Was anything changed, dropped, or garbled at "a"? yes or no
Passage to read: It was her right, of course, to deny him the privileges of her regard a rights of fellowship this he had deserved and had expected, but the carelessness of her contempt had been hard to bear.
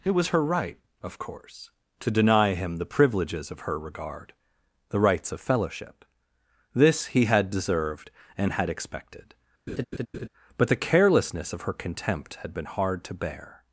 yes